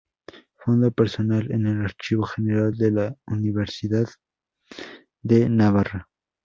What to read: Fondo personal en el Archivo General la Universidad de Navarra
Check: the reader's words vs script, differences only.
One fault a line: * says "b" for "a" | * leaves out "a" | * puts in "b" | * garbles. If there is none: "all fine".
* puts in "de"